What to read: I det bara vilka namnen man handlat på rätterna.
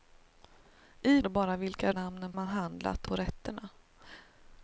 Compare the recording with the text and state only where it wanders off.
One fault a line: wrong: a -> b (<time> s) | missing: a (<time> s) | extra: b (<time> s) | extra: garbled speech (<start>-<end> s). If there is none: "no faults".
no faults